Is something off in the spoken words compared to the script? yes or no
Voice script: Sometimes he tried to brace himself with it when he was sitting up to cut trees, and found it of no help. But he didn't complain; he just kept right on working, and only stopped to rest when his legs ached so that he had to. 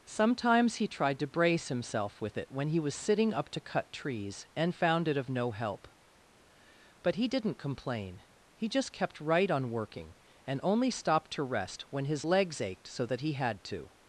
no